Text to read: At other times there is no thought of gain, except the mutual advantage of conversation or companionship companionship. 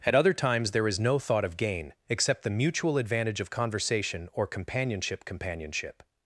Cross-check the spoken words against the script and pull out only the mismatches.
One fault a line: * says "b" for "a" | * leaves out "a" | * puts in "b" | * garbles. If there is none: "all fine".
all fine